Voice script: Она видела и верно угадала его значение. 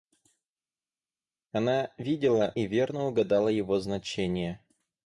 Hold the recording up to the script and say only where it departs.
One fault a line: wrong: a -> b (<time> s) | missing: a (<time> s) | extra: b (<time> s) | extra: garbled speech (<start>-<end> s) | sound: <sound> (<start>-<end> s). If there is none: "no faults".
no faults